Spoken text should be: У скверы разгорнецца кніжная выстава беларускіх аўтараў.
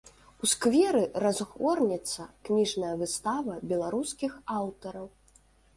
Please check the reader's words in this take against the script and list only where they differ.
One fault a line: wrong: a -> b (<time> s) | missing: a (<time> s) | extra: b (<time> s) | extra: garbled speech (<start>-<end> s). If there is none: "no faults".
no faults